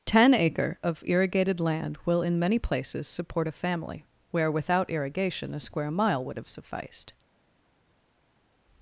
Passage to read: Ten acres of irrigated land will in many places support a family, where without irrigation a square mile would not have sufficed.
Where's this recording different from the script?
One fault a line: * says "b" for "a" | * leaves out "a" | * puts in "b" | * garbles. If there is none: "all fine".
* says "acre" for "acres"
* leaves out "not"